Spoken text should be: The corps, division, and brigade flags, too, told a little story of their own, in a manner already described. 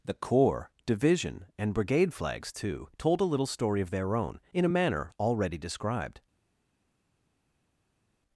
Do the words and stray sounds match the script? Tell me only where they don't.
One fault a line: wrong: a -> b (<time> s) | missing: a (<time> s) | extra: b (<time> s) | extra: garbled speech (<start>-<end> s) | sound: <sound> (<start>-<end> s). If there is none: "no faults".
no faults